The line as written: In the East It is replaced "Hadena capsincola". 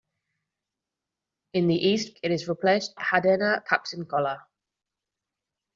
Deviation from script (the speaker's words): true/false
false